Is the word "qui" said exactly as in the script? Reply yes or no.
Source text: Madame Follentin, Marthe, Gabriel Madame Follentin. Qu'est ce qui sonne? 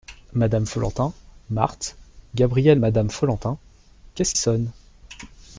no